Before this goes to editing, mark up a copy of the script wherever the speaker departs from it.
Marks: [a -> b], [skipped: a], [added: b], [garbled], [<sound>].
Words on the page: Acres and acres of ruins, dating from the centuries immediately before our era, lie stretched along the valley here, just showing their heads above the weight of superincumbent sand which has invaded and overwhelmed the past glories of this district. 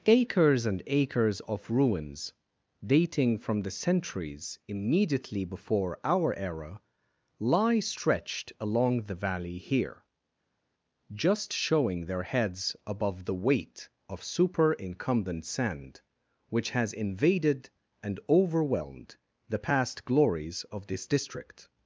Acres and acres of ruins, dating from the centuries immediately before our era, lie stretched along the valley here, just showing their heads above the weight of superincumbent sand which has invaded and overwhelmed the past glories of this district.